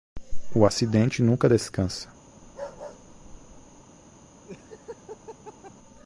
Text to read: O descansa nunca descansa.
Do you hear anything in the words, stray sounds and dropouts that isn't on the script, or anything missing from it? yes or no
yes